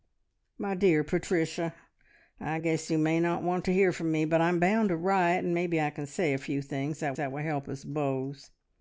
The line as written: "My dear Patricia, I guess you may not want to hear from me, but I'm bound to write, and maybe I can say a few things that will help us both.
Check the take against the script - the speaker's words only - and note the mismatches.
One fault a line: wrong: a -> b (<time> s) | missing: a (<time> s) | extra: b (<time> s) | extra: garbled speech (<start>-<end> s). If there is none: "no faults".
extra: that (7.2 s)